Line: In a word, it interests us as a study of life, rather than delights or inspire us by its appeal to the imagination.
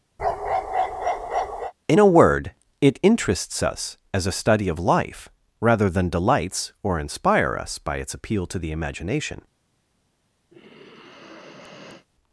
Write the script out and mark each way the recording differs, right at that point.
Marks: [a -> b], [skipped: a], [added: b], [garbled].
In a word, it interests us as a study of life, rather than delights or inspire us by its appeal to the imagination.